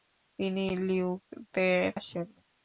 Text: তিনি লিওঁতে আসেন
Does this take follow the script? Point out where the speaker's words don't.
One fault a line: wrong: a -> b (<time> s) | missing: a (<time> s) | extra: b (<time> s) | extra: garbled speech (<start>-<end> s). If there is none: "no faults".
no faults